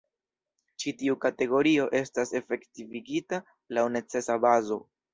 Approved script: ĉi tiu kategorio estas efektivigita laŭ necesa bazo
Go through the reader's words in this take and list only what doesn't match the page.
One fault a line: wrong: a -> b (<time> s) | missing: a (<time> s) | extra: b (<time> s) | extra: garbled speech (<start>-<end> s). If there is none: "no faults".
no faults